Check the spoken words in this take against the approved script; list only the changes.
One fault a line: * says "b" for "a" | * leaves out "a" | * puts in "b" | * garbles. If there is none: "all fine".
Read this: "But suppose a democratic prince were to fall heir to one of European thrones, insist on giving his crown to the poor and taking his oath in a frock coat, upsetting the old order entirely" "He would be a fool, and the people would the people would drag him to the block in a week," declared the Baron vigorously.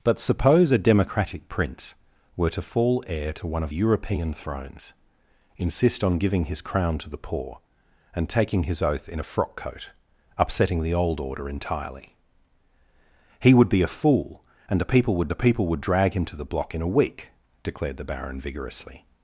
all fine